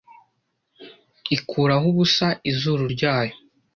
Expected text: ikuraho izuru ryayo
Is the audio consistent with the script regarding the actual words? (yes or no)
no